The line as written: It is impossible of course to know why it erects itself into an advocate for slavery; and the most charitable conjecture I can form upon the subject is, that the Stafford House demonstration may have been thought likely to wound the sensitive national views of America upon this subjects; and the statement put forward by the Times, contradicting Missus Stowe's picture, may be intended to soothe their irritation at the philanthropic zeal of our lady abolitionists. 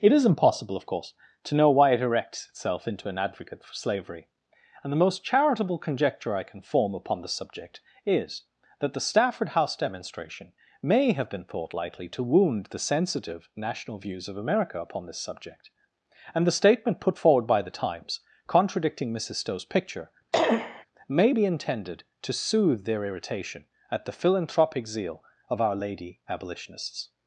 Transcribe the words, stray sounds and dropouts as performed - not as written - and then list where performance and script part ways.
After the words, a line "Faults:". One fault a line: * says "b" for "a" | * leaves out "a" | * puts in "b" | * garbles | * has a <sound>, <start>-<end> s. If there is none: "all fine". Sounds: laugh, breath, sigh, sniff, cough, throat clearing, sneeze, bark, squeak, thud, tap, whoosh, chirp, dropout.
It is impossible of course to know why it erects itself into an advocate for slavery; and the most charitable conjecture I can form upon the subject is, that the Stafford House demonstration may have been thought likely to wound the sensitive national views of America upon this subject; and the statement put forward by the Times, contradicting Missus Stowe's picture, may be intended to soothe their irritation at the philanthropic zeal of our lady abolitionists.
Faults:
* says "subject" for "subjects"
* has a cough, 20.3-20.9 s